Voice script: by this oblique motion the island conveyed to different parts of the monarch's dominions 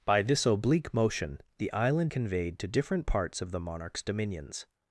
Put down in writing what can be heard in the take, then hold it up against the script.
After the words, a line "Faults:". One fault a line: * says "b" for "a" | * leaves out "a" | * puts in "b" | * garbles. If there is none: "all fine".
by this oblique motion the island conveyed to different parts of the monarch's dominions
Faults:
all fine